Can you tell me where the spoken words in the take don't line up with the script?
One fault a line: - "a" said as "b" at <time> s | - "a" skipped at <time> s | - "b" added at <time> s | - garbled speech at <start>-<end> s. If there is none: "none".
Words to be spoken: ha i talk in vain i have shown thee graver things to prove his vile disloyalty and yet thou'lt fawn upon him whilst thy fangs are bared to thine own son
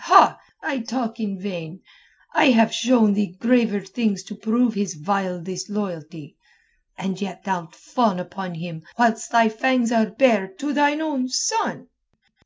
none